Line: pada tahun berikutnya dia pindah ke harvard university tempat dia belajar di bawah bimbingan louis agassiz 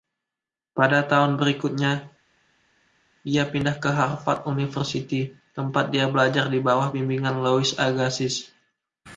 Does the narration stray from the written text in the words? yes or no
no